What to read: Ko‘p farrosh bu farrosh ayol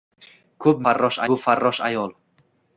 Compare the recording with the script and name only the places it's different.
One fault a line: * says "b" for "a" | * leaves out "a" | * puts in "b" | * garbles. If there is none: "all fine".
all fine